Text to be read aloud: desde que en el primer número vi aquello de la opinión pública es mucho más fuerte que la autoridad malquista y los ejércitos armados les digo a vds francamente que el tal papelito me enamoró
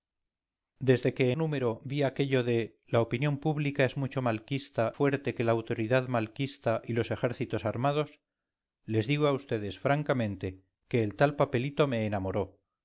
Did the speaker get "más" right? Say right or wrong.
wrong